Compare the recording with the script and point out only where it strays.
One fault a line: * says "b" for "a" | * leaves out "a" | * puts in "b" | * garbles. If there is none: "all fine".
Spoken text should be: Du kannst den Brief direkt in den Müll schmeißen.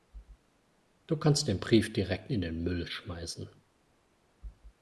all fine